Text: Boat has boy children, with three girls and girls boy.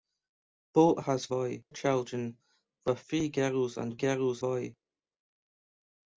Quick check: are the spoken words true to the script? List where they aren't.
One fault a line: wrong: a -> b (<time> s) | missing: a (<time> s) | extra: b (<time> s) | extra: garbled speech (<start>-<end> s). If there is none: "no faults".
no faults